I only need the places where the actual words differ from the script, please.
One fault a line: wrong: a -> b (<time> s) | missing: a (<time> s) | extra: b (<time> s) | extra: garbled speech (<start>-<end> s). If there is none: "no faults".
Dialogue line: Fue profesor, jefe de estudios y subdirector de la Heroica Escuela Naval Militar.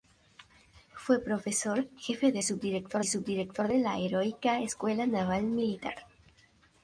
wrong: estudios -> subdirector (2.4 s)